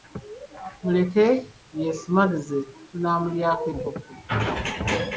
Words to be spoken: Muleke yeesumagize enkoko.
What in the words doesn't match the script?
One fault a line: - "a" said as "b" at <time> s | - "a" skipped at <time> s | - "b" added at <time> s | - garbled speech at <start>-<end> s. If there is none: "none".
- "tunaamulyako" added at 2.9 s